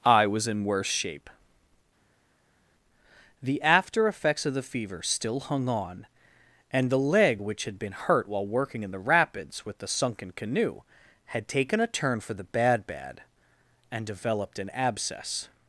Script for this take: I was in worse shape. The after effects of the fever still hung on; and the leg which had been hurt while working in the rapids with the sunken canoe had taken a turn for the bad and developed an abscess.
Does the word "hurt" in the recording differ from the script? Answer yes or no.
no